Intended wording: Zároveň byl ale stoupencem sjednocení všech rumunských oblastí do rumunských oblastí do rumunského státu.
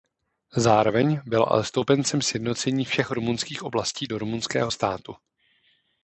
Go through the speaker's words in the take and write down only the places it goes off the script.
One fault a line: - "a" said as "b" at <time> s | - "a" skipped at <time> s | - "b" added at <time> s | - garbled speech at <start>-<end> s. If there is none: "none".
- "rumunských oblastí do" skipped at 4.2 s